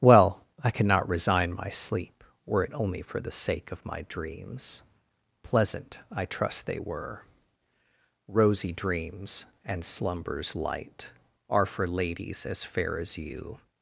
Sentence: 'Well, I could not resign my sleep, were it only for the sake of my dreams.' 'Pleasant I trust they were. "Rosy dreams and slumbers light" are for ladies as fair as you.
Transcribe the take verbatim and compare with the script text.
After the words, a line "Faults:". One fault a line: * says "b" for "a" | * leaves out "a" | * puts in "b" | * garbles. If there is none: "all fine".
'Well, I cannot resign my sleep, were it only for the sake of my dreams.' 'Pleasant I trust they were. "Rosy dreams and slumbers light" are for ladies as fair as you.
Faults:
* says "cannot" for "could not"